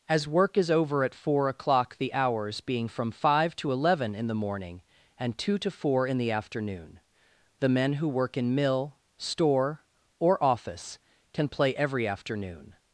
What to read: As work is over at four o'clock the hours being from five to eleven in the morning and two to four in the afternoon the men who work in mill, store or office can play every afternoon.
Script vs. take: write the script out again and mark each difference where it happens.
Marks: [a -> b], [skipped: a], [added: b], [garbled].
As work is over at four o'clock the hours being from five to eleven in the morning and two to four in the afternoon the men who work in mill, store or office can play every afternoon.